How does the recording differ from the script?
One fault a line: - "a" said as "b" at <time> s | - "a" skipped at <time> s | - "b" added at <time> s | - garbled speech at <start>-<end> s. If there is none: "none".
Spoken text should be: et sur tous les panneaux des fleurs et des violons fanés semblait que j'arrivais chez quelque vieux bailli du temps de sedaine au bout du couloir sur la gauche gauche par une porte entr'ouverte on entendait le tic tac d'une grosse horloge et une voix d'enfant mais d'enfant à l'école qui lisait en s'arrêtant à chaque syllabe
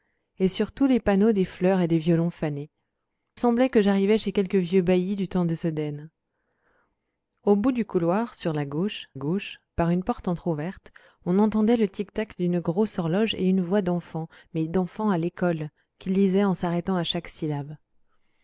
none